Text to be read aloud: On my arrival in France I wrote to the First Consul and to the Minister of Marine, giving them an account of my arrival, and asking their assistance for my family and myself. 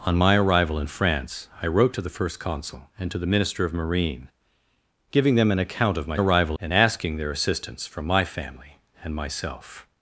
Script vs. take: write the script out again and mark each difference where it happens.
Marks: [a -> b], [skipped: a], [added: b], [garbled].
On my arrival in France I wrote to the First Consul and to the Minister of Marine, giving them an account of my arrival, and asking their assistance for my family and myself.